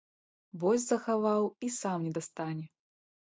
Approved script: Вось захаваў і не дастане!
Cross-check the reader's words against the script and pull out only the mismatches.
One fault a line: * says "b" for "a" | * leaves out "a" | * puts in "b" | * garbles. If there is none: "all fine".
* puts in "сам"